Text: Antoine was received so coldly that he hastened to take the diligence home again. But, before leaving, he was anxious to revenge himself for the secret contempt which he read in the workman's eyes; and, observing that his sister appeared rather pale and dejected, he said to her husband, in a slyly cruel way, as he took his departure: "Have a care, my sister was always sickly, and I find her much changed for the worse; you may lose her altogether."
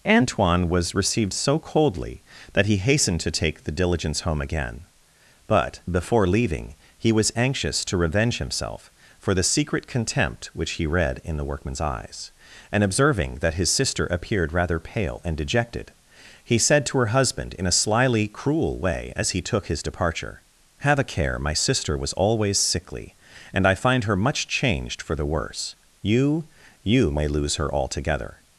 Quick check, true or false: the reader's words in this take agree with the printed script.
false